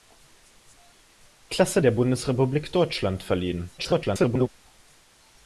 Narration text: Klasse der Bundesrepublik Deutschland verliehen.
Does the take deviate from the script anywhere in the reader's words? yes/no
yes